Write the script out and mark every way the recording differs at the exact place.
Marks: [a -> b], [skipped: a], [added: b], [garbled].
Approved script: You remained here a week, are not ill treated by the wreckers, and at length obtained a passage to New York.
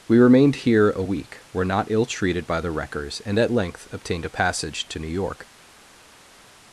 [You -> We] remained here a week, [are -> were] not ill treated by the wreckers, and at length obtained a passage to New York.